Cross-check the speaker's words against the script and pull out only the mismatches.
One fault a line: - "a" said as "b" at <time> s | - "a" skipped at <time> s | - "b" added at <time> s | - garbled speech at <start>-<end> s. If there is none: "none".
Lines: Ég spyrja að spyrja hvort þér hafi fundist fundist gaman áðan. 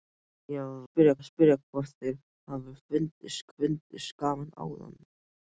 none